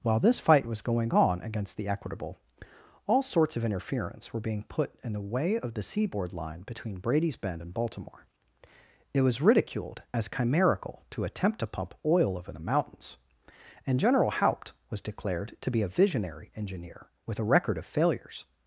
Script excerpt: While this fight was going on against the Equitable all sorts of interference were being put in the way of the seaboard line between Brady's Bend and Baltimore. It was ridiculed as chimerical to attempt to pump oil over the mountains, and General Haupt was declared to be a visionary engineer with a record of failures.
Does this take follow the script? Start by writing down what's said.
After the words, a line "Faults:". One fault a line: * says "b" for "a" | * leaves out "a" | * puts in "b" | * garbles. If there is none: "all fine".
While this fight was going on against the Equitable all sorts of interference were being put in the way of the seaboard line between Brady's Bend and Baltimore. It was ridiculed as chimerical to attempt to pump oil over the mountains, and General Haupt was declared to be a visionary engineer with a record of failures.
Faults:
all fine